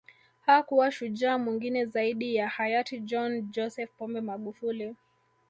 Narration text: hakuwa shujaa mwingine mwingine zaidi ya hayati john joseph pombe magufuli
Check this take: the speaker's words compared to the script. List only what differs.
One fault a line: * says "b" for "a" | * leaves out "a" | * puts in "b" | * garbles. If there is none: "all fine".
* leaves out "mwingine"